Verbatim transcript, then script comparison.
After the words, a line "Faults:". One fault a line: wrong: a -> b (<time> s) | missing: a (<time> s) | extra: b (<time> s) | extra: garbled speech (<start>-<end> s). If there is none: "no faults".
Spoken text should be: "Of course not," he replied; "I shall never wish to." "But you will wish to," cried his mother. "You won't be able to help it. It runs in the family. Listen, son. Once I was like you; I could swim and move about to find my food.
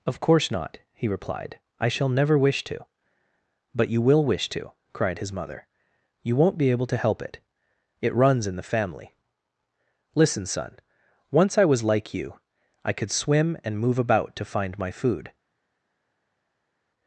"Of course not," he replied; "I shall never wish to." "But you will wish to," cried his mother. "You won't be able to help it. It runs in the family. Listen, son. Once I was like you; I could swim and move about to find my food.
Faults:
no faults